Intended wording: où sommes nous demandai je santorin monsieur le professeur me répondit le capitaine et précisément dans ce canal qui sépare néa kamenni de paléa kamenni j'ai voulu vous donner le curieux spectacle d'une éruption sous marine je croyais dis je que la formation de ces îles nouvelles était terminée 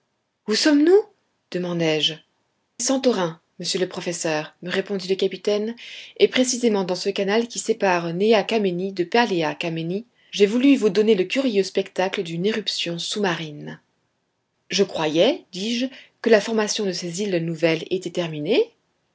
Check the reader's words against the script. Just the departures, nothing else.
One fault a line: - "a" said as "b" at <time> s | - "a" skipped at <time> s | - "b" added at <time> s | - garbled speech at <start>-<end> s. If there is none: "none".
none